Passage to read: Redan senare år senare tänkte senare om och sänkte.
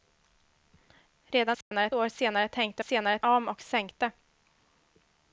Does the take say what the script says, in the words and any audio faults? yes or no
no